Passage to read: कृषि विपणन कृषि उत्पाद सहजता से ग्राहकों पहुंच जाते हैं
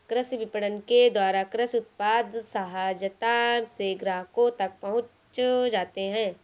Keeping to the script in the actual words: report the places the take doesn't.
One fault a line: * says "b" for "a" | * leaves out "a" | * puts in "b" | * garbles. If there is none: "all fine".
* puts in "के द्वारा"
* puts in "तक"